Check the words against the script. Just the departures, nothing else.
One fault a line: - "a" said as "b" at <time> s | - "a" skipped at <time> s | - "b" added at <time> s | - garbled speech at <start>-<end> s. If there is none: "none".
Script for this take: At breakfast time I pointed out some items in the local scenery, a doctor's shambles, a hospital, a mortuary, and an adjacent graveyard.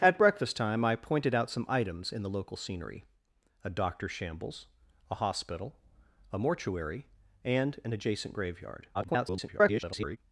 - garbled speech at 8.9-10.2 s